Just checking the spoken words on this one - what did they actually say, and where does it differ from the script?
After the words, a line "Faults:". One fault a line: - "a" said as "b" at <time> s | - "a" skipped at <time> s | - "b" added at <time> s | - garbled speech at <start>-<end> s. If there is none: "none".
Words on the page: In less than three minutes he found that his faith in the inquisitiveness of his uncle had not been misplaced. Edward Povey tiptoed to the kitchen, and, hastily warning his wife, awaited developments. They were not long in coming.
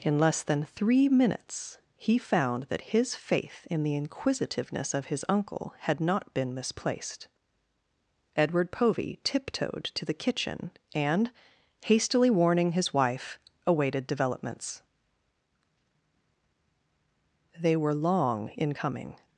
In less than three minutes he found that his faith in the inquisitiveness of his uncle had not been misplaced. Edward Povey tiptoed to the kitchen, and, hastily warning his wife, awaited developments. They were long in coming.
Faults:
- "not" skipped at 17.9 s